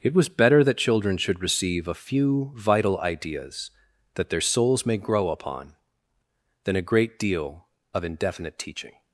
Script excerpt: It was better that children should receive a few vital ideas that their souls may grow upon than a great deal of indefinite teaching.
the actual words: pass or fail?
pass